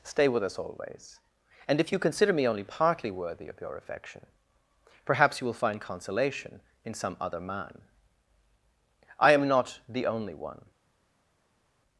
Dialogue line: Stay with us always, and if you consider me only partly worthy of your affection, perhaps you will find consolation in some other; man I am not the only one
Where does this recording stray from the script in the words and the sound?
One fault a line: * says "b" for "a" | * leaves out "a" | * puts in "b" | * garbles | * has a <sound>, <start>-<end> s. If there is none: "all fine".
all fine